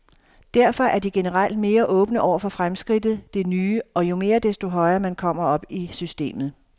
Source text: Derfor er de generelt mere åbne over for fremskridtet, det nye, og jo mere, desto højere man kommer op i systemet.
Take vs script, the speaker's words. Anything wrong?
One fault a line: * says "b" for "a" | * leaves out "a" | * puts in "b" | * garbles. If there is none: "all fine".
all fine